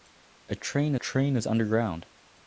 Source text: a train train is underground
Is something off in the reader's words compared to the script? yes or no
no